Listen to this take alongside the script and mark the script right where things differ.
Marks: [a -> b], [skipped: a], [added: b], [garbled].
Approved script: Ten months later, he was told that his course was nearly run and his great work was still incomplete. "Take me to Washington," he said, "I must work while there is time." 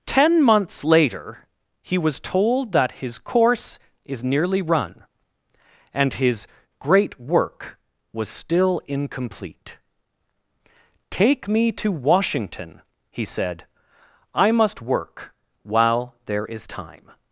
Ten months later, he was told that his course [was -> is] nearly run and his great work was still incomplete. "Take me to Washington," he said, "I must work while there is time."